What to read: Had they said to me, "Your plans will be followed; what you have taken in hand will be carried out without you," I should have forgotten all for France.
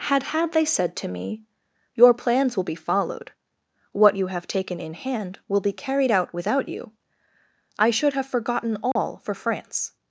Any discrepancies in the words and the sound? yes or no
yes